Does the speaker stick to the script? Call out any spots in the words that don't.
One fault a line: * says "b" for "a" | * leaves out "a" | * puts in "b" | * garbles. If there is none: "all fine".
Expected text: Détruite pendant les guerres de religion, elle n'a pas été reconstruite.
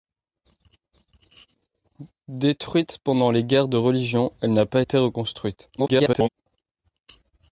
* garbles